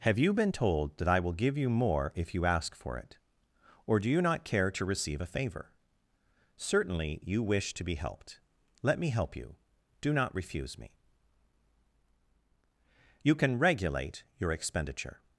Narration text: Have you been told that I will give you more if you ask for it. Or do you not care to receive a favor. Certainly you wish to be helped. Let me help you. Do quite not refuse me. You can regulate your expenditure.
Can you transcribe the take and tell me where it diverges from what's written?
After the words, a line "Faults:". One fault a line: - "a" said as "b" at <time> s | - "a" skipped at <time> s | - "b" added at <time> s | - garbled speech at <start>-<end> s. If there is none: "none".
Have you been told that I will give you more if you ask for it. Or do you not care to receive a favor. Certainly you wish to be helped. Let me help you. Do not refuse me. You can regulate your expenditure.
Faults:
- "quite" skipped at 10.1 s